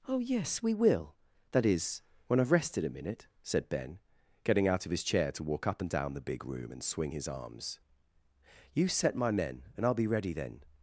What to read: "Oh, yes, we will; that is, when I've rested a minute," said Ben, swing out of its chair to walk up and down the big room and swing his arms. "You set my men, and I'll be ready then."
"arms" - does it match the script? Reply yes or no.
yes